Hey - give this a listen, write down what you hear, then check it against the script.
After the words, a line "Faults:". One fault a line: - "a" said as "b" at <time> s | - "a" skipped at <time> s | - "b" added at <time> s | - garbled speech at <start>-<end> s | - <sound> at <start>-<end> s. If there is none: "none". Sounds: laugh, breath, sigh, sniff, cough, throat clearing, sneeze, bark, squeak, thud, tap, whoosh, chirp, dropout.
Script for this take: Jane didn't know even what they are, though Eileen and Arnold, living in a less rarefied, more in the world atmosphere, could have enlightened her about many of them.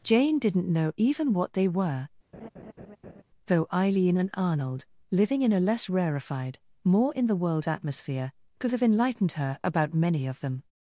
Jane didn't know even what they were, though Eileen and Arnold, living in a less rarefied, more in the world atmosphere, could have enlightened her about many of them.
Faults:
- "are" said as "were" at 1.7 s
- laugh at 2.3-3.2 s